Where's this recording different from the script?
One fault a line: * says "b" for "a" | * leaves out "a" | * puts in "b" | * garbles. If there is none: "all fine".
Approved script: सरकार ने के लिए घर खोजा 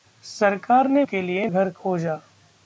all fine